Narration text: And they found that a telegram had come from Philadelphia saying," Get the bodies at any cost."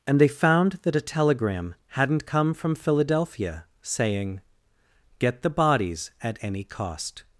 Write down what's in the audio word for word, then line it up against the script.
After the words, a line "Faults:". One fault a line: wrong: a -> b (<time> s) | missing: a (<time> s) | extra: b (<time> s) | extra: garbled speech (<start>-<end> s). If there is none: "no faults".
And they found that a telegram hadn't come from Philadelphia saying," Get the bodies at any cost."
Faults:
wrong: had -> hadn't (1.9 s)